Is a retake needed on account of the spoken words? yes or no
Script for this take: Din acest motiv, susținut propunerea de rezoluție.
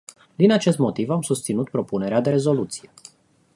yes